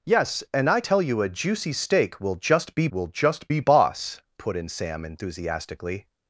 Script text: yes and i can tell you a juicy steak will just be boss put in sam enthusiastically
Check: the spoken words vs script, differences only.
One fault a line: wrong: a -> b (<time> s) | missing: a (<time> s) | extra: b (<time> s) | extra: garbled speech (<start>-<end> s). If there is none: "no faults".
missing: can (0.8 s)
extra: will just be (2.9 s)